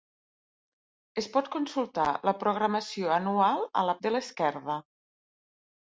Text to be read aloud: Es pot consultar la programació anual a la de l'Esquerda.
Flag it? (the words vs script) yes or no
no